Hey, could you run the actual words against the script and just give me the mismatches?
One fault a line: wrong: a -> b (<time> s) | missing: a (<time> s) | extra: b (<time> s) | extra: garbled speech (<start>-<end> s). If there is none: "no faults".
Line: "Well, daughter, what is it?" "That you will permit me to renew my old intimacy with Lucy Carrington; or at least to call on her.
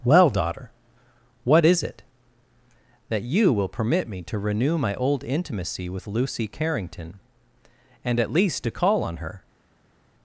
wrong: or -> and (8.0 s)